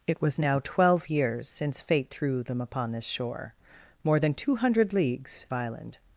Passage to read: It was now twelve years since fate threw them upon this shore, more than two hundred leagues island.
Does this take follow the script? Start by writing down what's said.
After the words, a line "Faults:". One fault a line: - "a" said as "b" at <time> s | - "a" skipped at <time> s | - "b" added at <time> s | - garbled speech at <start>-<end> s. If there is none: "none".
It was now twelve years since fate threw them upon this shore, more than two hundred leagues island.
Faults:
none